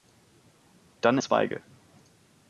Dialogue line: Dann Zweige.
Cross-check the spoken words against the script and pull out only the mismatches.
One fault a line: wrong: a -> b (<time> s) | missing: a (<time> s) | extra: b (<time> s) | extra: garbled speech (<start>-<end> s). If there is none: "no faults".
no faults